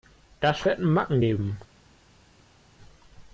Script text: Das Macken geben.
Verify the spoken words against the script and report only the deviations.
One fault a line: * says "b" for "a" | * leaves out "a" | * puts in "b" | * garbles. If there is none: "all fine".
* puts in "wird"